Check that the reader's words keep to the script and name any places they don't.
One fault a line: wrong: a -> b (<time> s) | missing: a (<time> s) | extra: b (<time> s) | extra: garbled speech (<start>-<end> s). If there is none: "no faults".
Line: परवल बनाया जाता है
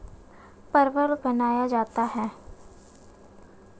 no faults